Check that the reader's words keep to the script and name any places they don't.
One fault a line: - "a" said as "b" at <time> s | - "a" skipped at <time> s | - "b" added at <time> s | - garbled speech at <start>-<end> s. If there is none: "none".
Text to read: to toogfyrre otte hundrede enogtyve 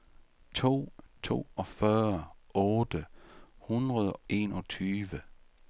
none